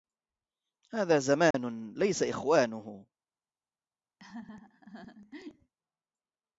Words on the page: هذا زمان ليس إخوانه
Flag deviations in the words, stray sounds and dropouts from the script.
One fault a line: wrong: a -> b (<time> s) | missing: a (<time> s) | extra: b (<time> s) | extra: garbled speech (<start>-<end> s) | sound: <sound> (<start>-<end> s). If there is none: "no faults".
sound: dropout (1.5-1.5 s)
sound: laugh (4.2-5.7 s)